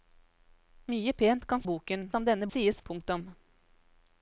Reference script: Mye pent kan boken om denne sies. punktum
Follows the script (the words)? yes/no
yes